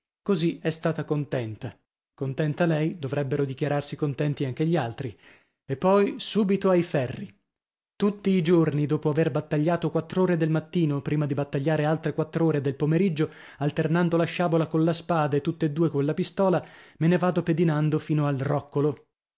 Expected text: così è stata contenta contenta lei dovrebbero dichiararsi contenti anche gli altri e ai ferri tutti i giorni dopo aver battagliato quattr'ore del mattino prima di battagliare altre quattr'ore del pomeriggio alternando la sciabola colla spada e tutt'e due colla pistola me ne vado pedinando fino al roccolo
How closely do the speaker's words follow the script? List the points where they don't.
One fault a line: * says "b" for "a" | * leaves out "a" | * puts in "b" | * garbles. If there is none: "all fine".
* puts in "poi subito"